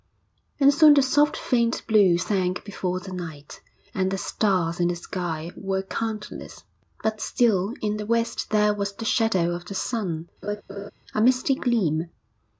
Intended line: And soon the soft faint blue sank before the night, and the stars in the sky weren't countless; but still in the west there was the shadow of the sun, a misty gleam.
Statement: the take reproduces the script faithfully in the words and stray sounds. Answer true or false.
false